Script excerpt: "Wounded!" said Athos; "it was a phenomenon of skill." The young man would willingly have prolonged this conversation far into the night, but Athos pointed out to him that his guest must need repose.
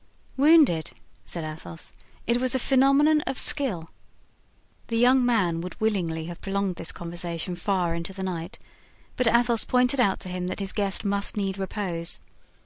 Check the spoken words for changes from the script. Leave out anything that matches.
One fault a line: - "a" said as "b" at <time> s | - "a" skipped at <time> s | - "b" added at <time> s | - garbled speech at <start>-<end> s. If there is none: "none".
none